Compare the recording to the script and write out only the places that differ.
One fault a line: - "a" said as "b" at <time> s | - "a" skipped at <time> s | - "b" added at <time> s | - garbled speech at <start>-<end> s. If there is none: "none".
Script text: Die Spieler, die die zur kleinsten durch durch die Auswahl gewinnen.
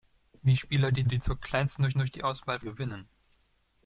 none